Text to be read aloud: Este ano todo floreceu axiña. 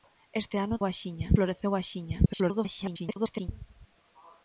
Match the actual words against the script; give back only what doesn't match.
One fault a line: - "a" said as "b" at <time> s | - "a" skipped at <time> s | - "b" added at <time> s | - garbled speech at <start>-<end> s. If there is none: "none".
- "todo" said as "axiña" at 0.8 s
- garbled speech at 2.3-3.5 s